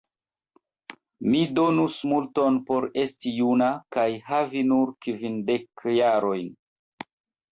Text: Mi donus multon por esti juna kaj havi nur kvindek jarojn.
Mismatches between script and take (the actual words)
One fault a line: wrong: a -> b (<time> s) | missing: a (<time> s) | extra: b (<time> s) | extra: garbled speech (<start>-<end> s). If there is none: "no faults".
no faults